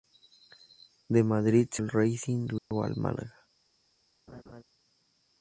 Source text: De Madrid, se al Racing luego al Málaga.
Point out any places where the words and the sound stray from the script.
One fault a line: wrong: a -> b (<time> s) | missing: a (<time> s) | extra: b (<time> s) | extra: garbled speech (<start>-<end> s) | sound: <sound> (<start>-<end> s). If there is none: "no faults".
sound: dropout (2.6-2.7 s)
sound: laugh (4.3-4.6 s)